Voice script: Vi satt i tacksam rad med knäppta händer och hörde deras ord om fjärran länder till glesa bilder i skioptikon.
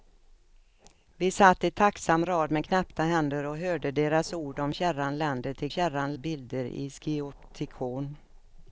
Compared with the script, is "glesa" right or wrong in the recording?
wrong